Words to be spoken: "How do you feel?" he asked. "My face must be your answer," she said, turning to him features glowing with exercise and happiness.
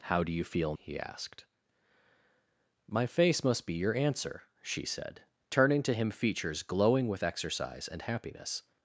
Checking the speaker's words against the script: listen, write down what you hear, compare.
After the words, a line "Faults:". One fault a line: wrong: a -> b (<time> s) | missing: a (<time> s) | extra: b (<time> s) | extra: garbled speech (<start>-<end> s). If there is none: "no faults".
"How do you feel?" he asked. "My face must be your answer," she said, turning to him features glowing with exercise and happiness.
Faults:
no faults